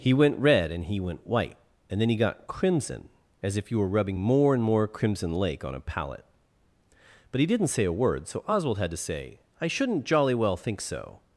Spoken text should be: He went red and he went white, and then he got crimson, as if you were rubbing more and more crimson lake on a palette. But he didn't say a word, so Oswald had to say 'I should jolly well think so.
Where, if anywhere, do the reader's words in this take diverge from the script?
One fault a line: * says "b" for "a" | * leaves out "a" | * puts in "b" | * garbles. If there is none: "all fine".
* says "shouldn't" for "should"